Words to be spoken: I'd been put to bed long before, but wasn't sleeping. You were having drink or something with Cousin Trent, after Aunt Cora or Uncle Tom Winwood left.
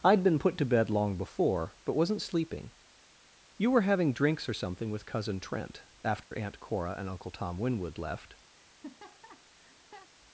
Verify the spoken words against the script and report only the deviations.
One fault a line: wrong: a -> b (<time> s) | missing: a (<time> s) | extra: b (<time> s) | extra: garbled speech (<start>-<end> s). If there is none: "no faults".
wrong: drink -> drinks (4.1 s)
wrong: or -> and (7.0 s)